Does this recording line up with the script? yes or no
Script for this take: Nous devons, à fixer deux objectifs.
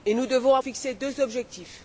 yes